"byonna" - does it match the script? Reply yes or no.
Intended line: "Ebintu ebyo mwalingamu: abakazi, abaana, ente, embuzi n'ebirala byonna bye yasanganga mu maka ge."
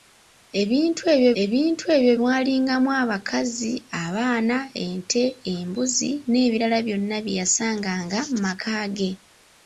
yes